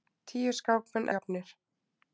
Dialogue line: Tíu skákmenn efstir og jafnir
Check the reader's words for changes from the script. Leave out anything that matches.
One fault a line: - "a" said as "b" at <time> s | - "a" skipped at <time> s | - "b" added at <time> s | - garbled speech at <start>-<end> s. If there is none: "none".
- "efstir" skipped at 1.1 s